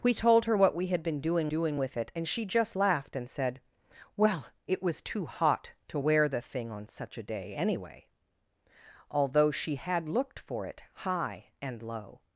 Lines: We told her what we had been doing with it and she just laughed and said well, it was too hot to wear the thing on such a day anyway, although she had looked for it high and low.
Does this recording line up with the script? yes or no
no